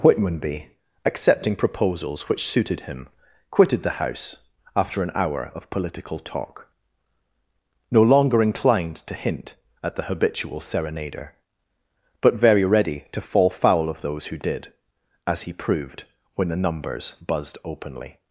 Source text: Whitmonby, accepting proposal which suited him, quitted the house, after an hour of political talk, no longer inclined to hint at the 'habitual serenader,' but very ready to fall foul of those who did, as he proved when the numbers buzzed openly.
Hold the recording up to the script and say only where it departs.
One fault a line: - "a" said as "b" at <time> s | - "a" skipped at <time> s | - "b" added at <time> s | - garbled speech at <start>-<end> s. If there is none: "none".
- "proposal" said as "proposals" at 1.6 s